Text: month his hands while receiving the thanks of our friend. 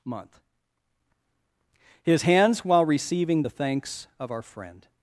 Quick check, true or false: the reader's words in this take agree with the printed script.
true